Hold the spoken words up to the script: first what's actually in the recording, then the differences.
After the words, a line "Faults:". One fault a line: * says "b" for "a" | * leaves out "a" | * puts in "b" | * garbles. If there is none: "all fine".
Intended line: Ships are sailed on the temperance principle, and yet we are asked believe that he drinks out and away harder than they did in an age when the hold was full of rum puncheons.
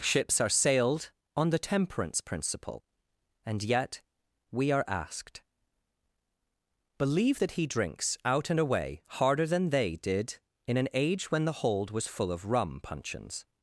Ships are sailed on the temperance principle, and yet we are asked believe that he drinks out and away harder than they did in an age when the hold was full of rum puncheons.
Faults:
all fine